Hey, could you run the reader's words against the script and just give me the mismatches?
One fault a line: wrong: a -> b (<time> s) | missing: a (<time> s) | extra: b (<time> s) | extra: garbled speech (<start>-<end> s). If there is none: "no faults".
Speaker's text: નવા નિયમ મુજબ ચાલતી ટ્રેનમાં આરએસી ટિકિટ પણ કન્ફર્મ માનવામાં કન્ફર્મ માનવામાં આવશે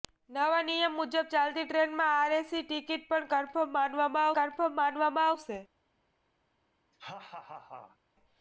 no faults